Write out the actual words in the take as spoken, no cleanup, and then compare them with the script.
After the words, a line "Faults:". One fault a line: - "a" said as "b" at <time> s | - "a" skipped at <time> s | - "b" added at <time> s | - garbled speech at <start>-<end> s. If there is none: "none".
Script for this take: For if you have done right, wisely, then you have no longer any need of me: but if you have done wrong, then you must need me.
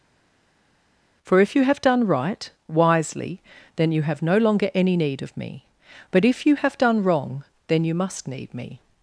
For if you have done right, wisely, then you have no longer any need of me: but if you have done wrong, then you must need me.
Faults:
none